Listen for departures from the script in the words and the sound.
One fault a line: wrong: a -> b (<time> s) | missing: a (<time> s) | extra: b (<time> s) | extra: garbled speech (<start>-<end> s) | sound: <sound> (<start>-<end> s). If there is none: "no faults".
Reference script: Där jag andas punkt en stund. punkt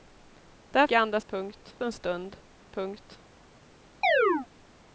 sound: chirp (4.0-4.5 s)